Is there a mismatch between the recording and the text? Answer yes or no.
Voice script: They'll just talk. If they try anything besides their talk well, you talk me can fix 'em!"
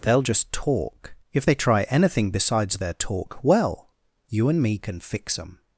yes